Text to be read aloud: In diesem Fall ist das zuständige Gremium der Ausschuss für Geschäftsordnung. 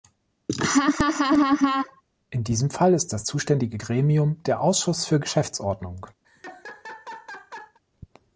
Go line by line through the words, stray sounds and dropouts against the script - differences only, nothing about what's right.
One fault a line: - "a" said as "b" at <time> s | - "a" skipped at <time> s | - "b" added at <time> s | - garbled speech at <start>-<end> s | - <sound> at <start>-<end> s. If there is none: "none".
- laugh at 0.5-2.0 s
- laugh at 6.2-7.8 s